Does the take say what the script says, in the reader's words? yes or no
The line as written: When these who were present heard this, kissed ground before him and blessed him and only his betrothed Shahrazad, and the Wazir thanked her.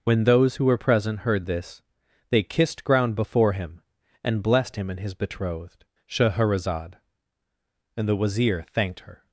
no